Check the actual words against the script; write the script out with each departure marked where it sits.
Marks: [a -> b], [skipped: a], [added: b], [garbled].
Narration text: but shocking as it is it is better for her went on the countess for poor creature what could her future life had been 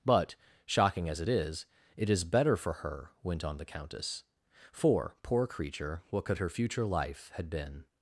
but shocking as it is it is better for her went on the countess for poor creature what could her future life had been